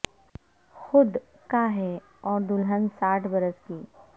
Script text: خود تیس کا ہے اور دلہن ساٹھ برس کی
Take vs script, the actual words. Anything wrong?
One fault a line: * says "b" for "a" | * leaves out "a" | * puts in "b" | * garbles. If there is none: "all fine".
* leaves out "تیس"